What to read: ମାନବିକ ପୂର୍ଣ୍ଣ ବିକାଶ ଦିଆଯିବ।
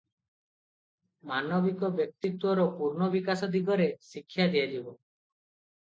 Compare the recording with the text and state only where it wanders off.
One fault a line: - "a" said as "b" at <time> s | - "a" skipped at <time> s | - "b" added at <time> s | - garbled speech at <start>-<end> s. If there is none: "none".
- "ବ୍ୟକ୍ତିତ୍ୱର" added at 1.9 s
- "ଦିଗରେ ଶିକ୍ଷା" added at 3.5 s